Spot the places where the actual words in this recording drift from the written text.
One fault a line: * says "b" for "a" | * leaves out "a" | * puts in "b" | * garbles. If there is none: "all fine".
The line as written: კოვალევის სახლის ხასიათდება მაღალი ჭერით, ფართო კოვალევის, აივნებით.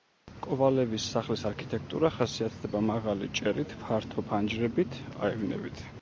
* puts in "არქიტექტურა"
* says "ფანჯრებით" for "კოვალევის"